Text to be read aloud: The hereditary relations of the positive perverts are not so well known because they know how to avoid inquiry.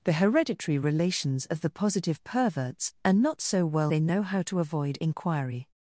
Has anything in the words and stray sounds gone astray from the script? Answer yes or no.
yes